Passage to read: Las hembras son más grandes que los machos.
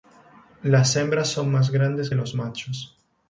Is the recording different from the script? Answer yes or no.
yes